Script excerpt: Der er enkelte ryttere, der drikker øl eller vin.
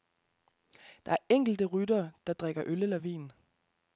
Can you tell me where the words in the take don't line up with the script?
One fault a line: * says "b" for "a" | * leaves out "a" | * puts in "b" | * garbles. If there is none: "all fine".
all fine